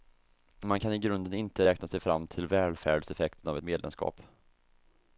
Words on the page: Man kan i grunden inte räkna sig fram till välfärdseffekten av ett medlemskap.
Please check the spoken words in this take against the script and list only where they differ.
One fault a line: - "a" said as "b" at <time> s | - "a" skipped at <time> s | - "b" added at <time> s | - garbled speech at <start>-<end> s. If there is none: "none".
none